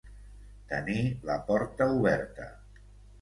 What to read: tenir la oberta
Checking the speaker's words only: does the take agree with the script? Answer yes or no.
no